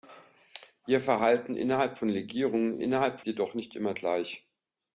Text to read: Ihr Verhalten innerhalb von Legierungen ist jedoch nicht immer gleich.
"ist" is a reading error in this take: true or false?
true